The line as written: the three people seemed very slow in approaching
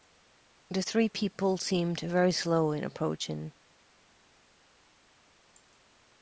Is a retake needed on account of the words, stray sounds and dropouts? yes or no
no